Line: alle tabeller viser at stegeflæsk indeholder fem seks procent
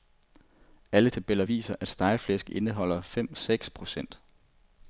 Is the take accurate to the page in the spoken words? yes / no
yes